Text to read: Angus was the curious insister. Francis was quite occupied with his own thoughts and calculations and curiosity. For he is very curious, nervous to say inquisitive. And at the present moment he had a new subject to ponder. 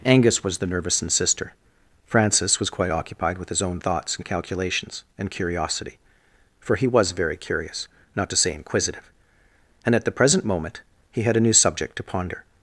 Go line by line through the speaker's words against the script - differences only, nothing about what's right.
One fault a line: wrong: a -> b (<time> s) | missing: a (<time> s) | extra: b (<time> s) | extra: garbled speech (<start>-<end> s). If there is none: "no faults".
wrong: curious -> nervous (0.7 s)
wrong: is -> was (6.9 s)
wrong: nervous -> not (8.1 s)